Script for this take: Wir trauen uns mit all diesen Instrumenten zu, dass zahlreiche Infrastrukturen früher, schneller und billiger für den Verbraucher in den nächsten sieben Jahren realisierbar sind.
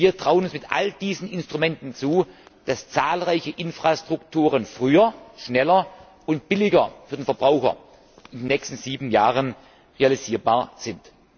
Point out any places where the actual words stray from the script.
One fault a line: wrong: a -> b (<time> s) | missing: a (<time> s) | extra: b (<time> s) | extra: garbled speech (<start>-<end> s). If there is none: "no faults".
no faults